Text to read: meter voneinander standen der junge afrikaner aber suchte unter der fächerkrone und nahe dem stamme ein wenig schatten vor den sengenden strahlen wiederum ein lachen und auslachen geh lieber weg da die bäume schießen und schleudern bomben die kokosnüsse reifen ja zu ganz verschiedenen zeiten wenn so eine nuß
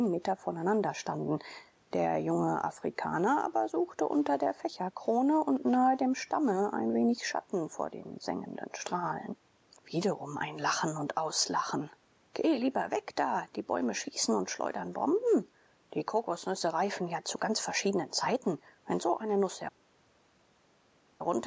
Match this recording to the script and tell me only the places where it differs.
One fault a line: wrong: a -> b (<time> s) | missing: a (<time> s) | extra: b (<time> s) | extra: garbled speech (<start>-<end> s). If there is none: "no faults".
no faults